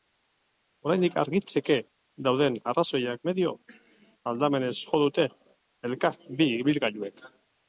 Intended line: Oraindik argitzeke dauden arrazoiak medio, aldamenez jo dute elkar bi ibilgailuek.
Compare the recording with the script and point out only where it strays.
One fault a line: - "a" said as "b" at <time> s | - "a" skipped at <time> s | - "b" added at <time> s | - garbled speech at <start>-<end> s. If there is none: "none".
none